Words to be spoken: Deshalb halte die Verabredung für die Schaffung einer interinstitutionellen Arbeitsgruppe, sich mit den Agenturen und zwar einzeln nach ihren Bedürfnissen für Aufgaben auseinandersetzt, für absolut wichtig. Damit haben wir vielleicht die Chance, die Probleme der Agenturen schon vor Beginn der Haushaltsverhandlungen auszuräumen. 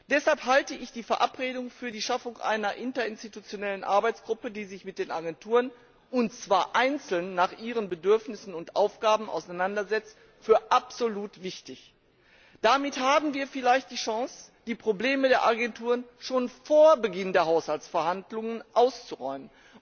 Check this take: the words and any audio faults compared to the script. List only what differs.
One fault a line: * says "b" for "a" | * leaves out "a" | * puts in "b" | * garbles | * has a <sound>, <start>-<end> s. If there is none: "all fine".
* puts in "ich"
* puts in "die"
* says "und" for "für"